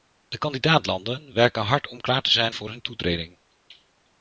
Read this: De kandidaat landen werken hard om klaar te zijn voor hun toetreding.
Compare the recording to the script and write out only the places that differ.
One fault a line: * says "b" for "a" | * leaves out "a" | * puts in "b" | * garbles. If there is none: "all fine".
all fine